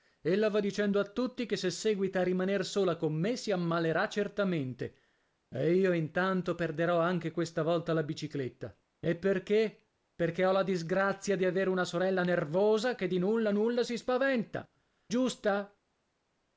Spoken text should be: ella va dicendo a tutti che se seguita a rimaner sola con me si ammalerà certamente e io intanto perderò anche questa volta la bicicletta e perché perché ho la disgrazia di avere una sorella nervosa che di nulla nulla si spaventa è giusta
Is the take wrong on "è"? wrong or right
wrong